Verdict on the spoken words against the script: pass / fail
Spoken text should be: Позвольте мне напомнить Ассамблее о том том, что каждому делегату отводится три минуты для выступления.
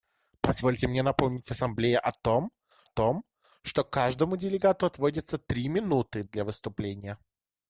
pass